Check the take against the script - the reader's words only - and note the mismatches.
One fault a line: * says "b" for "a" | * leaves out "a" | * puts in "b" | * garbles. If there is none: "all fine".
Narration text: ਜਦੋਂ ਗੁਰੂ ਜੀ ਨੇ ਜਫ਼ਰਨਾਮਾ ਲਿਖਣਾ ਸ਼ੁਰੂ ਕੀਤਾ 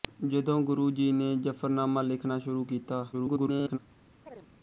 * garbles